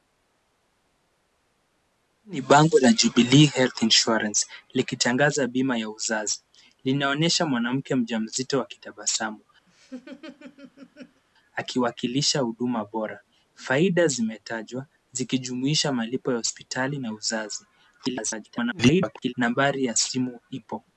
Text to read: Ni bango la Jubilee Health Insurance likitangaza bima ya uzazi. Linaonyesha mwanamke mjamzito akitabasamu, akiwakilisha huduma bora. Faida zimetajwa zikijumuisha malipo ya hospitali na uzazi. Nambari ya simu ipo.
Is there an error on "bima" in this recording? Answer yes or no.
no